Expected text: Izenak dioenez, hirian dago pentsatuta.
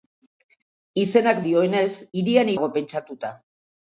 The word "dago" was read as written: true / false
true